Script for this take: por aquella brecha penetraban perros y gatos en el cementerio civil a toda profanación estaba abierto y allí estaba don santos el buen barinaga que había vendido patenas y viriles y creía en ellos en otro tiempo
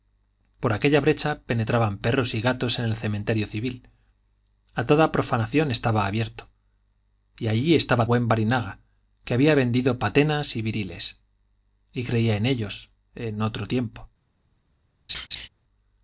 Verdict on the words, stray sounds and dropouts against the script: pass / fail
fail